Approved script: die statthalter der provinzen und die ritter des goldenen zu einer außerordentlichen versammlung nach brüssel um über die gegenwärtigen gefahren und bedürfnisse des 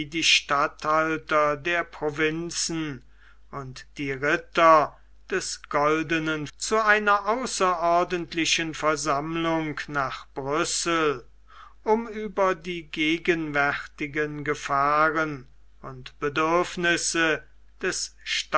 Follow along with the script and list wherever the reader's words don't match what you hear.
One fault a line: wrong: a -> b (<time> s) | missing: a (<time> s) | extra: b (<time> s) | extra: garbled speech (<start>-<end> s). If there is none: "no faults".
no faults